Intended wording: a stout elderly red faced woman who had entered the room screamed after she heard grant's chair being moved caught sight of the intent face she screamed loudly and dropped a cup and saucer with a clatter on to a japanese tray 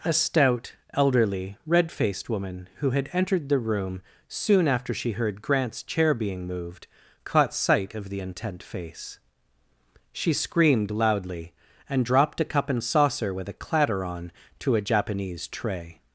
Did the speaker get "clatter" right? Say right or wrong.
right